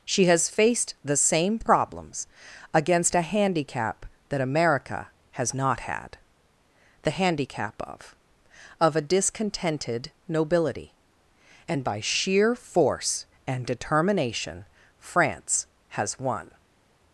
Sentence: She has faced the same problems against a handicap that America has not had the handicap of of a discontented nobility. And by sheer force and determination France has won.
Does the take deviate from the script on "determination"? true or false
false